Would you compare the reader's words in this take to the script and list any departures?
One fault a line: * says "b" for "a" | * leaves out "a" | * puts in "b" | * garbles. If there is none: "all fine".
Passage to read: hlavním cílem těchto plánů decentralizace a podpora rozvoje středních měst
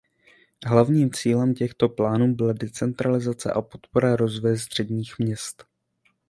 * puts in "byla"